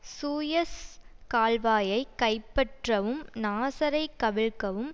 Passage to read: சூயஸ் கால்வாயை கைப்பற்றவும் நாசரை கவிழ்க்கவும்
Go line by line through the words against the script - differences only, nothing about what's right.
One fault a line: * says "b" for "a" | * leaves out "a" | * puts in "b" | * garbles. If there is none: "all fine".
all fine